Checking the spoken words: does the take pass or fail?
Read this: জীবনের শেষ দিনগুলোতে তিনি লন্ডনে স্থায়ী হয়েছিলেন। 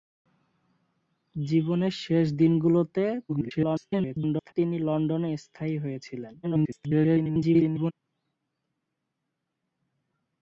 fail